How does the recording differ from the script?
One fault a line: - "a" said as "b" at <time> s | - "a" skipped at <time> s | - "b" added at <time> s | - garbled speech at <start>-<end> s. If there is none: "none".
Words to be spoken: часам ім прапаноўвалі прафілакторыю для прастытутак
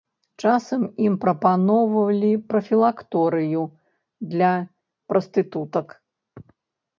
none